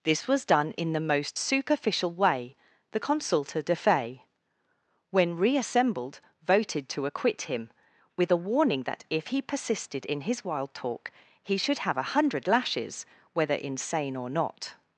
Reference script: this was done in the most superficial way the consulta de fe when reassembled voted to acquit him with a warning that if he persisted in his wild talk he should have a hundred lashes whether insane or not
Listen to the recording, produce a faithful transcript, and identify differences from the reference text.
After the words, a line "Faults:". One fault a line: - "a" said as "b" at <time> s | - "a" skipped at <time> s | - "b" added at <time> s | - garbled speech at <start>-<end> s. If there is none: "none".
this was done in the most superficial way the consulta de fe when reassembled voted to acquit him with a warning that if he persisted in his wild talk he should have a hundred lashes whether insane or not
Faults:
none